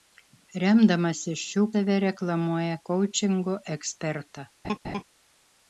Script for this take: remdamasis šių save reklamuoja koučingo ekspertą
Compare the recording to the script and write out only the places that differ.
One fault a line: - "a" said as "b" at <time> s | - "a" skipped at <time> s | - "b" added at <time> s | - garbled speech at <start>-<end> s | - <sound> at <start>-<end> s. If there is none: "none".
- laugh at 4.6-5.0 s